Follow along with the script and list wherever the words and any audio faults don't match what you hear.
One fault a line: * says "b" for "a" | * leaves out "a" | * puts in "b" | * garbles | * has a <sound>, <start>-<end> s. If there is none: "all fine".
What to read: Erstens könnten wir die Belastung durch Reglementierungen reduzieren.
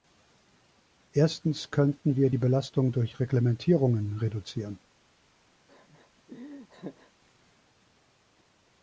* has a laugh, 5.7-7.1 s